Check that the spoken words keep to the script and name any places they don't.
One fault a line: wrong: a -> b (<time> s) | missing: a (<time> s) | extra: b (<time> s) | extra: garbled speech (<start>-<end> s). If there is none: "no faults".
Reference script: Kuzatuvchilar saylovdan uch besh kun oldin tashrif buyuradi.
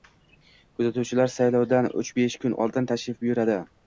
no faults